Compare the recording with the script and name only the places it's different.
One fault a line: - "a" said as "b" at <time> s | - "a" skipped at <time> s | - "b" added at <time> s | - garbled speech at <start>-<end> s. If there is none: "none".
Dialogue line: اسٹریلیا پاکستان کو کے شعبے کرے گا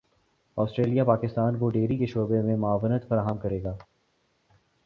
- "ڈیری" added at 1.7 s
- "میں معاونت فراہم" added at 2.4 s